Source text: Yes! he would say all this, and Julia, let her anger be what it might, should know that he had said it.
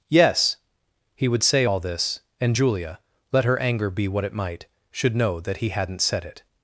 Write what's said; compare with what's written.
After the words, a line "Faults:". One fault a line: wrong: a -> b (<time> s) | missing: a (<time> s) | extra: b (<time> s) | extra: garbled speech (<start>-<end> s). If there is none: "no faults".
Yes! he would say all this, and Julia, let her anger be what it might, should know that he hadn't said it.
Faults:
wrong: had -> hadn't (5.7 s)